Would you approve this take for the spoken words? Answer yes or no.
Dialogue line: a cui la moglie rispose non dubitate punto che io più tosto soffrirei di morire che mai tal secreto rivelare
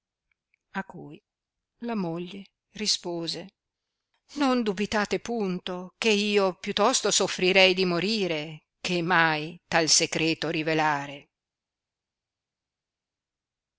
yes